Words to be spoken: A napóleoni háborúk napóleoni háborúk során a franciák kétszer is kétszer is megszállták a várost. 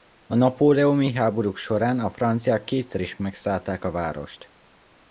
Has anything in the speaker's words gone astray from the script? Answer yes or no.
yes